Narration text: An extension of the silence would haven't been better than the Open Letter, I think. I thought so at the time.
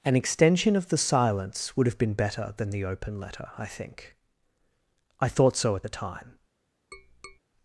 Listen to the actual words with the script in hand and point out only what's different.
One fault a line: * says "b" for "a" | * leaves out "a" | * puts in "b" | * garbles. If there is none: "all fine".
* says "have" for "haven't"